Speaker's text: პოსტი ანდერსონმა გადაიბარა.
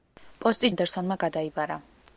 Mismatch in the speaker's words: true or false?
false